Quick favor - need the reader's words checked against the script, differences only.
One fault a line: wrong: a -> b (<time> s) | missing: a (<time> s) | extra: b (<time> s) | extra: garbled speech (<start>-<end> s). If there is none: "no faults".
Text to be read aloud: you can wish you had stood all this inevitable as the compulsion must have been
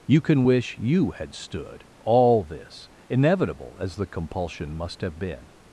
no faults